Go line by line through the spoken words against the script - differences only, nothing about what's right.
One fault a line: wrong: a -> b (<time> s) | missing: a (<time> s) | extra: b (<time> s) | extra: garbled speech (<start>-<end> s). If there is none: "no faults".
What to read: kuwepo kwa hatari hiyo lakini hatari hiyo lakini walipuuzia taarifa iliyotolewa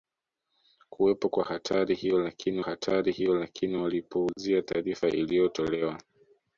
no faults